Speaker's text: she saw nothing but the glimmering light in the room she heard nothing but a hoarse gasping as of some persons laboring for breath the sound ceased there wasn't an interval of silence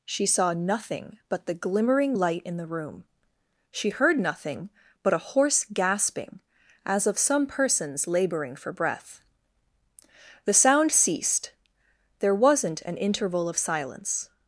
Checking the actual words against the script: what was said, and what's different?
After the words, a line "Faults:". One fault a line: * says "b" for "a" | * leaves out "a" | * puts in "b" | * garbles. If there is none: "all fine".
she saw nothing but the glimmering light in the room she heard nothing but a hoarse gasping as of some persons laboring for breath the sound ceased there wasn't an interval of silence
Faults:
all fine